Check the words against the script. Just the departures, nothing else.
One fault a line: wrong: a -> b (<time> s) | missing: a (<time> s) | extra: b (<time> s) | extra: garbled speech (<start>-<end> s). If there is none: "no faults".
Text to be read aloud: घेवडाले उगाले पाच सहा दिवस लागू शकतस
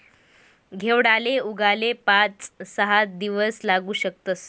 no faults